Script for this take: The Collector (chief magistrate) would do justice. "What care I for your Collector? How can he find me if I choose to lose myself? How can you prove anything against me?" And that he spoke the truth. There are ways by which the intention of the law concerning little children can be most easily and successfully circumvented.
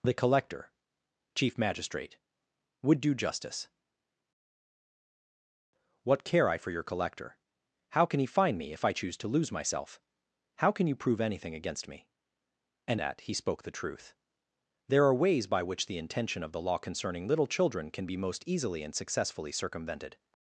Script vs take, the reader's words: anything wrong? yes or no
no